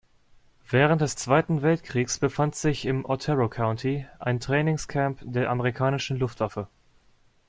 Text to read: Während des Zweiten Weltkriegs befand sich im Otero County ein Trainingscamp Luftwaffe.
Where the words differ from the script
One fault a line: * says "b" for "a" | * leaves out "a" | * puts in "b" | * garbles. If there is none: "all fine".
* puts in "der amerikanischen"